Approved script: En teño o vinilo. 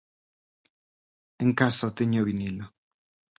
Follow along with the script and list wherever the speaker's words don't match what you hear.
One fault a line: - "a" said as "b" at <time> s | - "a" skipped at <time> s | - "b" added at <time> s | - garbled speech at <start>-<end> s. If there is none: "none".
- "casa" added at 1.6 s